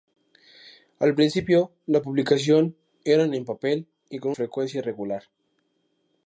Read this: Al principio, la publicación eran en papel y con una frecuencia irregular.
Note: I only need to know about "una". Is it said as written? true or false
false